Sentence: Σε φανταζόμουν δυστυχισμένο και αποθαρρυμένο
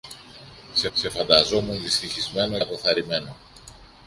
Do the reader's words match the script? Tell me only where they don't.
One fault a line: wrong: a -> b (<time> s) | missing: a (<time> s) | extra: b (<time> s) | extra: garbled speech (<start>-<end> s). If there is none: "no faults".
extra: σε (0.9 s)
missing: και (2.6 s)